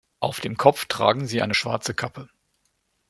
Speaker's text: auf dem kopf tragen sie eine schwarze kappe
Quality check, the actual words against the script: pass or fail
pass